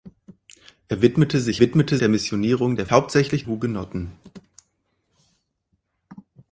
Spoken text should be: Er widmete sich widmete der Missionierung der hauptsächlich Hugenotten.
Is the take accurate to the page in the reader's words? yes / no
yes